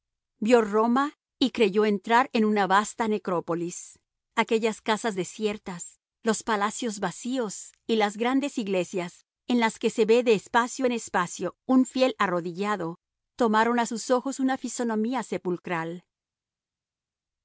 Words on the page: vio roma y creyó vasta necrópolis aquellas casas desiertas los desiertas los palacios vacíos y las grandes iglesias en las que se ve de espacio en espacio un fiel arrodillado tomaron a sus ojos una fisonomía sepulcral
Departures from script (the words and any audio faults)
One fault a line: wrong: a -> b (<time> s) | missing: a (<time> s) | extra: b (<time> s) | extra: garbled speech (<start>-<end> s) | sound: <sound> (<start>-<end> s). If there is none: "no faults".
extra: entrar en una (1.9 s)
missing: desiertas los (6.4 s)